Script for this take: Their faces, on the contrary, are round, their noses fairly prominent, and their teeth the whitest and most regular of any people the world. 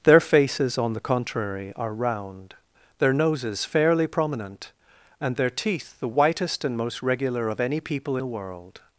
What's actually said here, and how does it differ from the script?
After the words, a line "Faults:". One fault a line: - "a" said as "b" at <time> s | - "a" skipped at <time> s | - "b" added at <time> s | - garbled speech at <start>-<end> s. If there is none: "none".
Their faces, on the contrary, are round, their noses fairly prominent, and their teeth the whitest and most regular of any people the world.
Faults:
none